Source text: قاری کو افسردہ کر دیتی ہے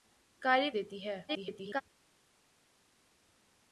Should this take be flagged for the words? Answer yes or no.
yes